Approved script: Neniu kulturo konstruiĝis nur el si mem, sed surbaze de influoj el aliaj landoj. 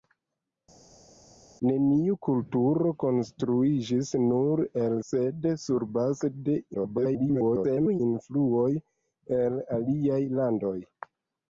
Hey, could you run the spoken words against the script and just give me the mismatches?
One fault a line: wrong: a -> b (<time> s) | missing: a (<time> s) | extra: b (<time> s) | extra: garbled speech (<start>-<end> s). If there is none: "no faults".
missing: si mem (5.0 s)
extra: garbled speech (6.7-8.0 s)